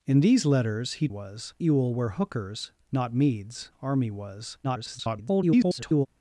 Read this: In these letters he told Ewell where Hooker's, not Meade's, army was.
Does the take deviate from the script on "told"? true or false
true